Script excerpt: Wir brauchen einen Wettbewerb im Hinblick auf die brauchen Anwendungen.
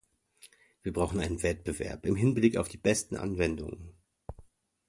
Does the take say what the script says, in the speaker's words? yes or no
no